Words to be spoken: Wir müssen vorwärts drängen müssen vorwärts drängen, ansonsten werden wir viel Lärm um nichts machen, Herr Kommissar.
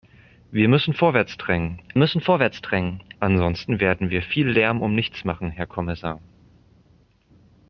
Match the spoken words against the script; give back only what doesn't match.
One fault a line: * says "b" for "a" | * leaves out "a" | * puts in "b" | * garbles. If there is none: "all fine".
all fine